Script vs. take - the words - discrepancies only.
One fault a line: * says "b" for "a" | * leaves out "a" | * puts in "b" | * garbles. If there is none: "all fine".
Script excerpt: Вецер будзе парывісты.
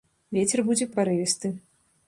all fine